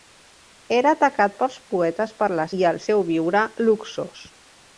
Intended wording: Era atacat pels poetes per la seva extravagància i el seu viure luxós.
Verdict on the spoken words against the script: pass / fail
fail